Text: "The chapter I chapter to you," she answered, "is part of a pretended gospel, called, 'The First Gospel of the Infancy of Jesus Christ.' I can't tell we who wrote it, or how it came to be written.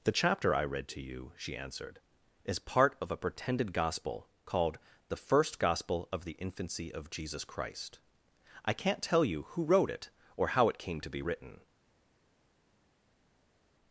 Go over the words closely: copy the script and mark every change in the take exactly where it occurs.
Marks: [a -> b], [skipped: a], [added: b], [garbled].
"The chapter I [chapter -> read] to you," she answered, "is part of a pretended gospel, called, 'The First Gospel of the Infancy of Jesus Christ.' I can't tell [we -> you] who wrote it, or how it came to be written.